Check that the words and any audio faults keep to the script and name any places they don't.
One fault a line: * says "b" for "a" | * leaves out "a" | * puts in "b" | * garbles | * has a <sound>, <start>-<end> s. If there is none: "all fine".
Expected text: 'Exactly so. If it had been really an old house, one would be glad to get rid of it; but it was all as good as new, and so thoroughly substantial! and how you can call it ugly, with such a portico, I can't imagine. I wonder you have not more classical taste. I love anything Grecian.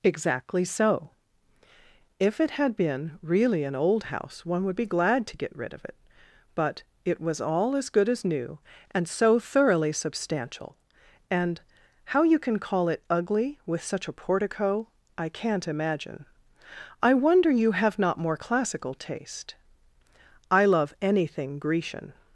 all fine